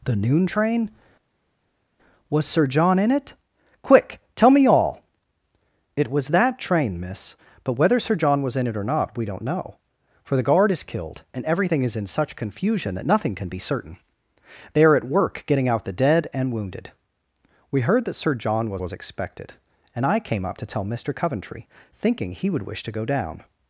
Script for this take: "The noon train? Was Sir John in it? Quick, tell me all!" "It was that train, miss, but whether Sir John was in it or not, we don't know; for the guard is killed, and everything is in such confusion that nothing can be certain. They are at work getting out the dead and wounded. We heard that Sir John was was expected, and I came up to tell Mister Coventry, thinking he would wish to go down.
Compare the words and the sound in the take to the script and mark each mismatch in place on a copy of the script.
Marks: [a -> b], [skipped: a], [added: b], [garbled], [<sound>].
"The noon train? Was Sir John in it? Quick, tell me all!" "It was that train, miss, but whether Sir John was in it or not, we don't know; for the guard is killed, and everything is in such confusion that nothing can be certain. They are at work getting out the dead and wounded. We heard that Sir John was was expected, and I came up to tell Mister Coventry, thinking he would wish to go down.